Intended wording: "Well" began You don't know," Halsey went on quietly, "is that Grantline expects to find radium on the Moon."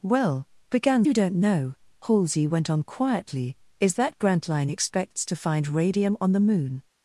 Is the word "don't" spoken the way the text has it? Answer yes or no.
yes